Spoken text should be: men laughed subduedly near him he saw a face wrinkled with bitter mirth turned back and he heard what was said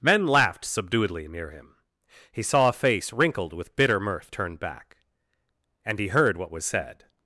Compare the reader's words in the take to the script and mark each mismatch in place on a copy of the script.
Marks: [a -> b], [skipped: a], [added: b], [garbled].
men laughed subduedly near him he saw a face wrinkled with bitter mirth turned back and he heard what was said